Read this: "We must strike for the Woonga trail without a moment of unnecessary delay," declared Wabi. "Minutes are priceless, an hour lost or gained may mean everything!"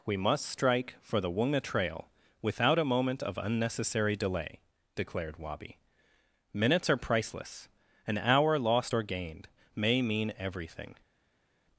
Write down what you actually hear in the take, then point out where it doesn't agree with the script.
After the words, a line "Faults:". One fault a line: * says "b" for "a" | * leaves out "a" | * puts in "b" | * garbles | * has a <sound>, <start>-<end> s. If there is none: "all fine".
"We must strike for the Woonga trail without a moment of unnecessary delay," declared Wabi. "Minutes are priceless, an hour lost or gained may mean everything!"
Faults:
all fine